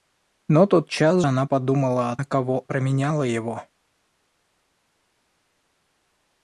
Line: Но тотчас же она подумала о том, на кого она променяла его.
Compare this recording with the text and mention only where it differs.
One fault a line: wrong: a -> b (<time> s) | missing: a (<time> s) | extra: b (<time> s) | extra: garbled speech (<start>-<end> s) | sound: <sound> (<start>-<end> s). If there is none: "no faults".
missing: же (1.2 s)
missing: том (2.2 s)
missing: она (2.6 s)